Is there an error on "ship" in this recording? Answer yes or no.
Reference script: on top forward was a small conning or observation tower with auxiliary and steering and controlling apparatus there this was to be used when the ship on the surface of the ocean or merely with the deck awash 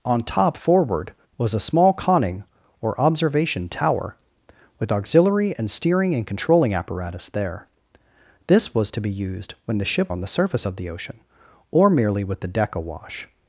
no